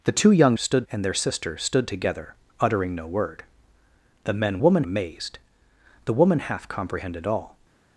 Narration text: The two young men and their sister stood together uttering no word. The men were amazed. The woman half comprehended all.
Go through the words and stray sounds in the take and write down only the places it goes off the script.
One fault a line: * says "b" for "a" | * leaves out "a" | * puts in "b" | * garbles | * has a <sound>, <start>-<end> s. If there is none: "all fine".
* says "stood" for "men"
* says "woman" for "were"